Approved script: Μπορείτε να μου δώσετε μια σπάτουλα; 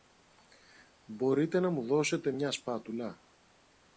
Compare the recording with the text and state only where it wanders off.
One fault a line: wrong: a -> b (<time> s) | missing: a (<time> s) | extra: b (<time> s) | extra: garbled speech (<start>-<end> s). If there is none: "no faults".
no faults